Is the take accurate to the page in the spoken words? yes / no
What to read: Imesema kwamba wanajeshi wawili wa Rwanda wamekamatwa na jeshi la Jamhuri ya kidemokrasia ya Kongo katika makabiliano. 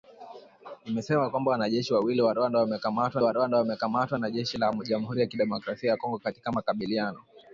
no